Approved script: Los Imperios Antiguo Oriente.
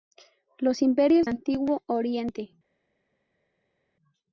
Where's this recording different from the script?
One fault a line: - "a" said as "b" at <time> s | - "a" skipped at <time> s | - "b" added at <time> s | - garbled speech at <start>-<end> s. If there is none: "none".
none